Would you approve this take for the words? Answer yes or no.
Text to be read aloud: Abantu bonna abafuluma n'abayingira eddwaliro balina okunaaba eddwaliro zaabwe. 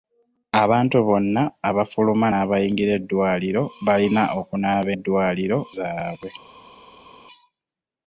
yes